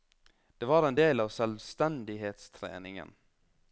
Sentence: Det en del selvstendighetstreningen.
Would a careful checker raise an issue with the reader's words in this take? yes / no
yes